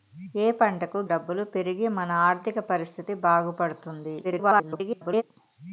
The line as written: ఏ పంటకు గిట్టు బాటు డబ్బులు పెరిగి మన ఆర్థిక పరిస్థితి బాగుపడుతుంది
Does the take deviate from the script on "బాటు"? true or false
true